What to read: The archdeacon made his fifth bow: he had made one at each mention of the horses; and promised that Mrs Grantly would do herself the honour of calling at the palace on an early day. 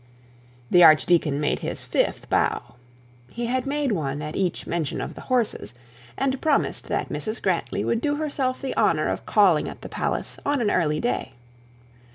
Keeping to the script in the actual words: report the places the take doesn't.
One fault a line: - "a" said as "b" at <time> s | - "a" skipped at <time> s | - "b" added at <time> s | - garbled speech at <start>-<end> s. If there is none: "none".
none